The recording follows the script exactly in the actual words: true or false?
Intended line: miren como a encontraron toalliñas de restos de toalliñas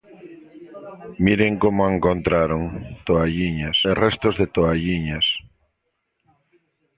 true